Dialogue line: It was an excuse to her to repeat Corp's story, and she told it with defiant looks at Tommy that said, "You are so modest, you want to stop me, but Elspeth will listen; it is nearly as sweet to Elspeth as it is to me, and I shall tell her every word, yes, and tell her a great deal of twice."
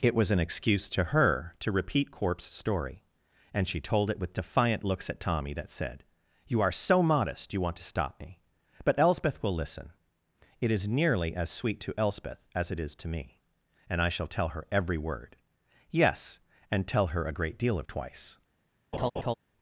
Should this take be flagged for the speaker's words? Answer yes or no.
no